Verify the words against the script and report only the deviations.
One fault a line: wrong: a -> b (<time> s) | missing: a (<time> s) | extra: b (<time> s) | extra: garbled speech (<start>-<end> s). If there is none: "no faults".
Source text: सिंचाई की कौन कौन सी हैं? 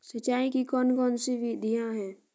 extra: विधियां (1.3 s)